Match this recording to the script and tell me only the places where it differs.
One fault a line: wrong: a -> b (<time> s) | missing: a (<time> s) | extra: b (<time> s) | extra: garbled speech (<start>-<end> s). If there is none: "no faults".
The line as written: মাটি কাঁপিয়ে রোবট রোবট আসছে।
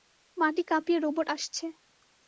missing: রোবট (1.3 s)